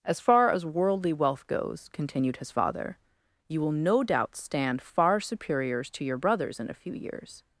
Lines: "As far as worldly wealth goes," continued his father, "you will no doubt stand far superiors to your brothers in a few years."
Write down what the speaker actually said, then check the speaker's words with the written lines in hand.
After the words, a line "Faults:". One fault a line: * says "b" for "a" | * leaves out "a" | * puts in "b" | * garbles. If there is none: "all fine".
"As far as worldly wealth goes," continued his father, "you will no doubt stand far superiors to your brothers in a few years."
Faults:
all fine